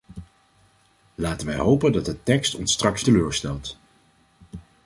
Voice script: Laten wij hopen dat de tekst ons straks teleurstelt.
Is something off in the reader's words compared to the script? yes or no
no